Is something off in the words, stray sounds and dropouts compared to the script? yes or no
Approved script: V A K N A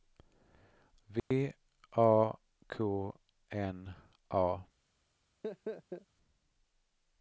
yes